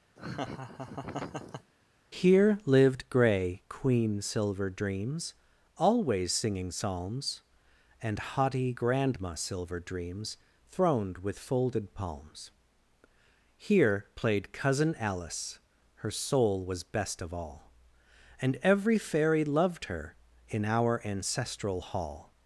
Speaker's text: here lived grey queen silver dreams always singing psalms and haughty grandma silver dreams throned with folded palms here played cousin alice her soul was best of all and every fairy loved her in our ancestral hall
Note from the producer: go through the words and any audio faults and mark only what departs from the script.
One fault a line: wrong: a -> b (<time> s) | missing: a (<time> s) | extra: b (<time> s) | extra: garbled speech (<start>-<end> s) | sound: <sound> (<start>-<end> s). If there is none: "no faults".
sound: laugh (0.2-1.7 s)